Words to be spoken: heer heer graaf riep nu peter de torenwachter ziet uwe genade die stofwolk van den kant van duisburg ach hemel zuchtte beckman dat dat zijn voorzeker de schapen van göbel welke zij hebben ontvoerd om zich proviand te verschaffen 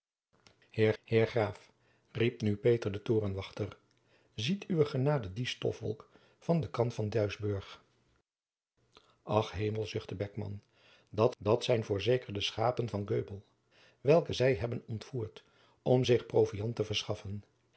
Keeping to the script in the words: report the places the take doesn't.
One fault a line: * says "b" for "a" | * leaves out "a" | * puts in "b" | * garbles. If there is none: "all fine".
all fine